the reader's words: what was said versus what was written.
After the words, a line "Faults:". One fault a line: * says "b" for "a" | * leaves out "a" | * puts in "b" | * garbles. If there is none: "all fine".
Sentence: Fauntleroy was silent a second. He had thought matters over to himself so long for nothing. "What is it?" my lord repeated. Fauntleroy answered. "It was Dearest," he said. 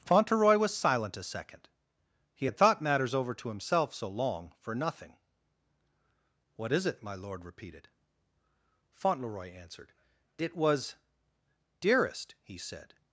Fauntleroy was silent a second. He had thought matters over to himself so long for nothing. "What is it?" my lord repeated. Fauntleroy answered. "It was Dearest," he said.
Faults:
all fine